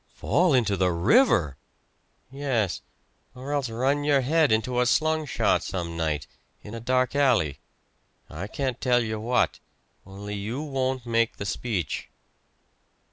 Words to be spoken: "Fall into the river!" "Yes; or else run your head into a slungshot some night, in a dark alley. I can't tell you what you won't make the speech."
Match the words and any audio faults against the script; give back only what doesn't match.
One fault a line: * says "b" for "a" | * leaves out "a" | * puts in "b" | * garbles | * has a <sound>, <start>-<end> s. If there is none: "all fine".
* puts in "only"